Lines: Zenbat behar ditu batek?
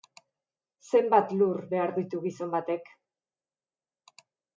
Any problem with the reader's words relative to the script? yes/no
yes